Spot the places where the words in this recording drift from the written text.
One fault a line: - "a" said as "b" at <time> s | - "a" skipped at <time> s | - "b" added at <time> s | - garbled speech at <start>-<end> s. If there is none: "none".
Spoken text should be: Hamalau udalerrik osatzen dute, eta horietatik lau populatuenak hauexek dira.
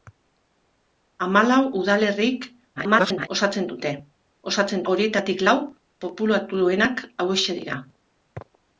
- garbled speech at 2.8-3.3 s
- "eta" said as "osatzen" at 4.5 s